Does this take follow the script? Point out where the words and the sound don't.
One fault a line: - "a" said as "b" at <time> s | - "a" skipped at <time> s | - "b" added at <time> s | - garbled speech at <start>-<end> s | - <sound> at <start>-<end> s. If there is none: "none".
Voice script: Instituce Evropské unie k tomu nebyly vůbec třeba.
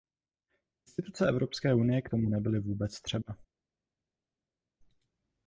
none